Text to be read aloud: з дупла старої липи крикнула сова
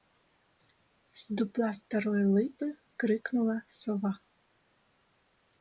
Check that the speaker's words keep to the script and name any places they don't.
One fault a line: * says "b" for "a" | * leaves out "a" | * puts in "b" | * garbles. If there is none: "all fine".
all fine